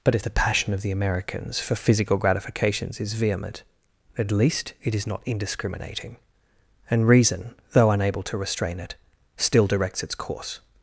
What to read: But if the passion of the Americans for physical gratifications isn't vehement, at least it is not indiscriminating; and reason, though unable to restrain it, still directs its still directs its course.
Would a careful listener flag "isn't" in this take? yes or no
yes